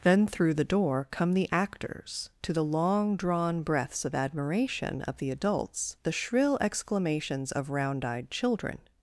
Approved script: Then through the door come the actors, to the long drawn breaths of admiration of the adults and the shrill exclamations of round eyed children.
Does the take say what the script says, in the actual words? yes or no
no